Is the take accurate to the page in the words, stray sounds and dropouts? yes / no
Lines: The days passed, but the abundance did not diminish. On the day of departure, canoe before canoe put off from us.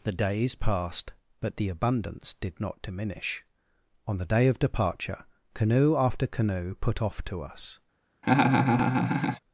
no